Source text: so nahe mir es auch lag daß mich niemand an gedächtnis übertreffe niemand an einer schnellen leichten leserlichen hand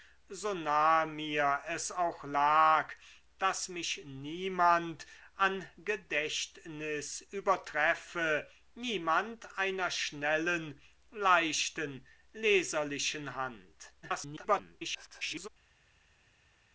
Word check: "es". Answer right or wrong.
right